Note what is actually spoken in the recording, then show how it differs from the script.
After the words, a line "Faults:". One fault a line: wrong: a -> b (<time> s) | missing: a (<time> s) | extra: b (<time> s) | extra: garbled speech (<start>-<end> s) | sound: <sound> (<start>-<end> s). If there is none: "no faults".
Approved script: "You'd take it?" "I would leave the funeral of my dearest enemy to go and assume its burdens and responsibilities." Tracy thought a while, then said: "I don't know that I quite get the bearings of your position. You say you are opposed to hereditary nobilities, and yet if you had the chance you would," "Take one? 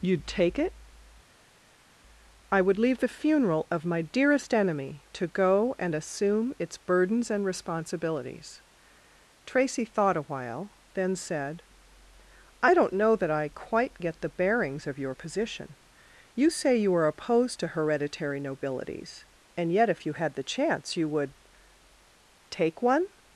"You'd take it?" "I would leave the funeral of my dearest enemy to go and assume its burdens and responsibilities." Tracy thought a while, then said: "I don't know that I quite get the bearings of your position. You say you are opposed to hereditary nobilities, and yet if you had the chance you would," "Take one?
Faults:
no faults